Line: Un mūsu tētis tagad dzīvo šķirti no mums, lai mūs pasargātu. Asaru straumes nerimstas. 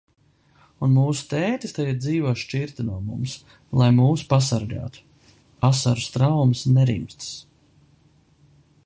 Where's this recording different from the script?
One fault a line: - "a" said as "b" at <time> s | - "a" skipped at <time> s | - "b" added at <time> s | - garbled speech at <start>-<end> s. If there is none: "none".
none